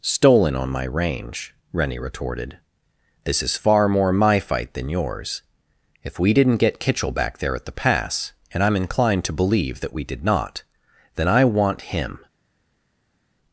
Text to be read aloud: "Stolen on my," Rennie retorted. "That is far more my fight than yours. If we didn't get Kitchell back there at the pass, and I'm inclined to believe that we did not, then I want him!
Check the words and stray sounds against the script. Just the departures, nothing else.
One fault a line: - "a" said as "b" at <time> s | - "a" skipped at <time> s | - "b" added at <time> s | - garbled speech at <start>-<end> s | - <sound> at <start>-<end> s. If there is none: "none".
- "range" added at 0.8 s
- "That" said as "This" at 3.2 s